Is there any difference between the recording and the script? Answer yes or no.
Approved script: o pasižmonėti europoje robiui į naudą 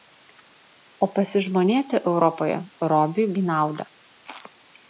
no